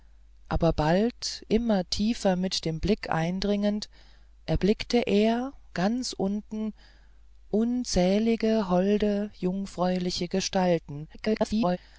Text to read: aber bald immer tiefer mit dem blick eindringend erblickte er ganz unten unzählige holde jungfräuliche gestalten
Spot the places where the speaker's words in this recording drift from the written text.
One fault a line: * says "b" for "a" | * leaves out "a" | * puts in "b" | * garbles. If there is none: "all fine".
* garbles